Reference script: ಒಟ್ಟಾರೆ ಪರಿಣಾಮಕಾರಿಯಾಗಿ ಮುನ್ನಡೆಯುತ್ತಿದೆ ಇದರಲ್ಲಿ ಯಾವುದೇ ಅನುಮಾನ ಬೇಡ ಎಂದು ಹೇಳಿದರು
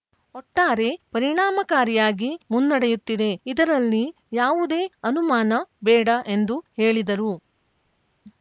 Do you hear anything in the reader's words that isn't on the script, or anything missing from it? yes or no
no